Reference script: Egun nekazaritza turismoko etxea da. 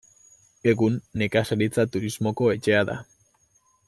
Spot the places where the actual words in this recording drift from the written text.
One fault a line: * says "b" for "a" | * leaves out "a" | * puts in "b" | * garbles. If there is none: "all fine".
all fine